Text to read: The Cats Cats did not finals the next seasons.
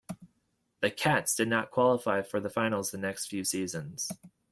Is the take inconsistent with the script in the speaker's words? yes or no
yes